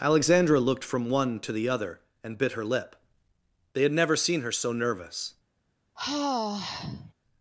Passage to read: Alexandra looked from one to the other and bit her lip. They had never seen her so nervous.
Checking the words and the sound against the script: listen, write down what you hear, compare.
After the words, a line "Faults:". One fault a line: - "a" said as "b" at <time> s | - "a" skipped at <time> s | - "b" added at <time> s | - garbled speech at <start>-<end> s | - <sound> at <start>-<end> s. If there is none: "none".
Alexandra looked from one to the other and bit her lip. They had never seen her so nervous.
Faults:
- sigh at 6.0-7.1 s